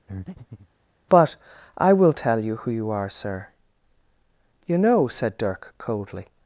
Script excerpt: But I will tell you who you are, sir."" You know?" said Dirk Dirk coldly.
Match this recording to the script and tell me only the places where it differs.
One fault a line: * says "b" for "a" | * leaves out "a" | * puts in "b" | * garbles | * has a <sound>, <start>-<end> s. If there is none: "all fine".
* has a breath, 0.1-0.7 s
* leaves out "Dirk"